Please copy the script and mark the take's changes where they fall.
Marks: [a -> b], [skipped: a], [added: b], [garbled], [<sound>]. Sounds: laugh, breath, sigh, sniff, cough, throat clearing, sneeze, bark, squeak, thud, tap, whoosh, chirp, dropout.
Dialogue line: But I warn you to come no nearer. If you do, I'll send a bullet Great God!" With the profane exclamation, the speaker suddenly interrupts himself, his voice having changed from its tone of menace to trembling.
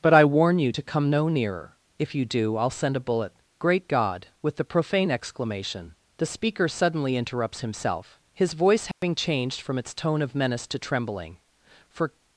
But I warn you to come no nearer. If you do, I'll send a bullet Great God!" With the profane exclamation, the speaker suddenly interrupts himself, his voice having [dropout] changed from its tone of menace to trembling. [added: For]